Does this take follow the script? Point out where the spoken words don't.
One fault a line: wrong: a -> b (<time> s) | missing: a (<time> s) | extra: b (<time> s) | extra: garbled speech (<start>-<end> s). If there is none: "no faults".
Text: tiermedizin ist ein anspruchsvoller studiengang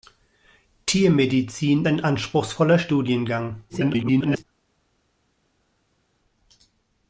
missing: ist (1.9 s)
extra: garbled speech (3.7-4.4 s)